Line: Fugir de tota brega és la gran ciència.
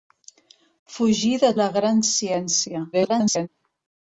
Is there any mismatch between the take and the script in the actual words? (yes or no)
yes